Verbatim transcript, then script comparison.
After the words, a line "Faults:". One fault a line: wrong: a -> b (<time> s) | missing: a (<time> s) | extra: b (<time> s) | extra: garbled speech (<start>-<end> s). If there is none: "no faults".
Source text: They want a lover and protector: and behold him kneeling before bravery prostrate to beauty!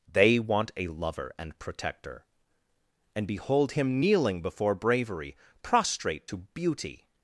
They want a lover and protector: and behold him kneeling before bravery prostrate to beauty!
Faults:
no faults